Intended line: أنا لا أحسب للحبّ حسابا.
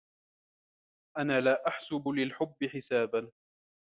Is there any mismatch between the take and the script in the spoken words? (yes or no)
no